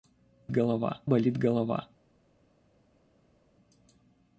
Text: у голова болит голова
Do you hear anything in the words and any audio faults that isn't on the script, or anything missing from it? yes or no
no